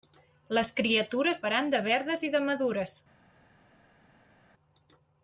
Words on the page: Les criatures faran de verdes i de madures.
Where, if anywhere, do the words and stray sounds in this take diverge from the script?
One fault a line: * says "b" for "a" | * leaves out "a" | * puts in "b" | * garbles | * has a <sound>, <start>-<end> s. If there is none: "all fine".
all fine